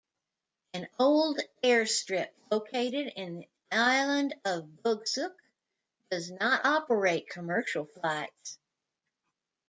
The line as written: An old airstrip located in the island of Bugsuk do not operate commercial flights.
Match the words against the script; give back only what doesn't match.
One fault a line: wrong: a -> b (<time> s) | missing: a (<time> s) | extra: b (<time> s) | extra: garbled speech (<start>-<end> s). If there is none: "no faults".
wrong: do -> does (6.1 s)